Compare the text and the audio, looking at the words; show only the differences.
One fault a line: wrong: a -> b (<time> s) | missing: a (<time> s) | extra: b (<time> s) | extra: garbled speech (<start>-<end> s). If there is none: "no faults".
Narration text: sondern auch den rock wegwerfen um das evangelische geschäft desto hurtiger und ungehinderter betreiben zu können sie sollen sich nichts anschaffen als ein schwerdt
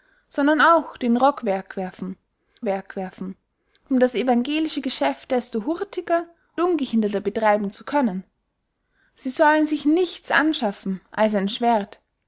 extra: wegwerfen (2.6 s)
missing: und (6.2 s)